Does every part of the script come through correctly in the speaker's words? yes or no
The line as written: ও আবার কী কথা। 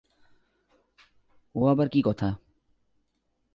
yes